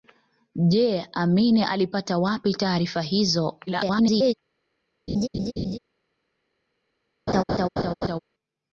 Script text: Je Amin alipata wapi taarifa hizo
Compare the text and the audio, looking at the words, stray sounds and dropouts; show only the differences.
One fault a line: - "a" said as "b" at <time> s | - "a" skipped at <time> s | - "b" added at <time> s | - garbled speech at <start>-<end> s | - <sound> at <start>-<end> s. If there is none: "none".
- garbled speech at 3.7-4.3 s
- laugh at 5.1-5.8 s
- laugh at 7.3-8.2 s